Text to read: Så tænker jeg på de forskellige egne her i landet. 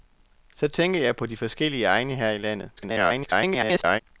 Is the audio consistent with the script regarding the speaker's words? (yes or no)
no